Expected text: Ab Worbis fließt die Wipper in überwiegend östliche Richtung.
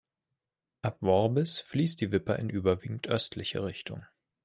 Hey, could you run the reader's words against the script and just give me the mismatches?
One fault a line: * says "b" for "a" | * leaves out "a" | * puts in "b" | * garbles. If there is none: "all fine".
all fine